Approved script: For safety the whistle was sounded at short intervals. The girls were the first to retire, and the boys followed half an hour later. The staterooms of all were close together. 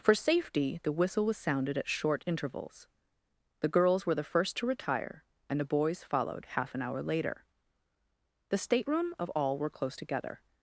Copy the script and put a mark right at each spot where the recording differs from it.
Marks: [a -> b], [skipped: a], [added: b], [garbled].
For safety the whistle was sounded at short intervals. The girls were the first to retire, and the boys followed half an hour later. The [staterooms -> stateroom] of all were close together.